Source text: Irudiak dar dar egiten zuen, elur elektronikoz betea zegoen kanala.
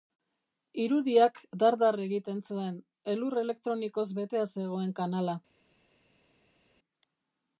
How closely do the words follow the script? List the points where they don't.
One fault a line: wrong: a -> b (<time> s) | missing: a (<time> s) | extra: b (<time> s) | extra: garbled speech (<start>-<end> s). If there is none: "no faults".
no faults